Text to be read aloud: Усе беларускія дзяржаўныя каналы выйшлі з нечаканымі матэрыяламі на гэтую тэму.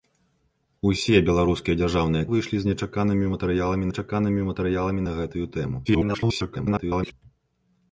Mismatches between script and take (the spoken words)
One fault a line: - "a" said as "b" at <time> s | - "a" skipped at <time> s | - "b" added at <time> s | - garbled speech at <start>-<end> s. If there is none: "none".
- "каналы" skipped at 2.3 s
- "нечаканымі матэрыяламі" added at 3.9 s
- garbled speech at 5.8-7.1 s